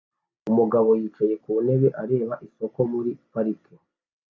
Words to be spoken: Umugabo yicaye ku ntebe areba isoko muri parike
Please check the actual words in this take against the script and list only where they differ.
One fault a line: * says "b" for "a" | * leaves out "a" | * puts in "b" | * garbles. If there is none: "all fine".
all fine